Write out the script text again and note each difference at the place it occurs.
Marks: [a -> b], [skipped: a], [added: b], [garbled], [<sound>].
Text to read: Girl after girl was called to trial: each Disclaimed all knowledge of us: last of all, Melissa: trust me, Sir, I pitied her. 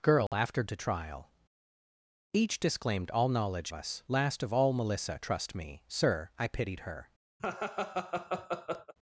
Girl [dropout] after [skipped: girl was called] to trial: each Disclaimed all knowledge [skipped: of] us: last of all, Melissa: trust me, Sir, I pitied her. [laugh]